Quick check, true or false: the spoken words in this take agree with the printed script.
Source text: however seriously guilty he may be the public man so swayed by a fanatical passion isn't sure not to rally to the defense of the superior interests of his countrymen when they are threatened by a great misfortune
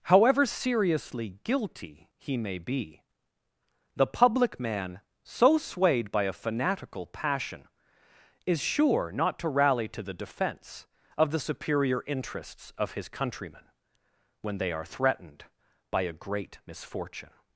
false